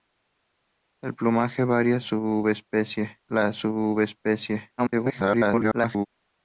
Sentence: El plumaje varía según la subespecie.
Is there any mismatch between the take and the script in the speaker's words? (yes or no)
yes